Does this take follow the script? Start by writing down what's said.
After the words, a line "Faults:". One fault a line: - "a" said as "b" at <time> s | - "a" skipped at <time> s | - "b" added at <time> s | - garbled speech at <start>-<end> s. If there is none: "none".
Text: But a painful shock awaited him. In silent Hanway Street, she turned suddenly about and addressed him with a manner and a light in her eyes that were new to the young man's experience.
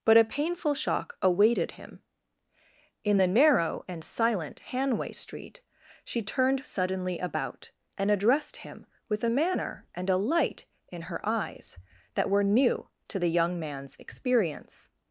But a painful shock awaited him. In the narrow and silent Hanway Street, she turned suddenly about and addressed him with a manner and a light in her eyes that were new to the young man's experience.
Faults:
- "the narrow and" added at 3.2 s